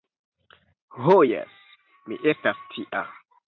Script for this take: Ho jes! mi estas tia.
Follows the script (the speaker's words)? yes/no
yes